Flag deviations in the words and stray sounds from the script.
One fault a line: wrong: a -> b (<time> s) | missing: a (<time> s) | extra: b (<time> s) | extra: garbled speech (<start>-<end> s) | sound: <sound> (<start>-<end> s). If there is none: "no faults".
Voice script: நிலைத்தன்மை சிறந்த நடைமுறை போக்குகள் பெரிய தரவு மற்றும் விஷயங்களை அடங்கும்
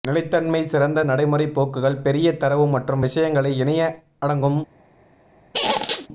extra: இணைய (3.6 s)
sound: squeak (5.5-6.1 s)